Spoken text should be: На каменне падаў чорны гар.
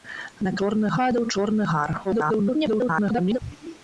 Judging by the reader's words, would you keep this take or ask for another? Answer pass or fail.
fail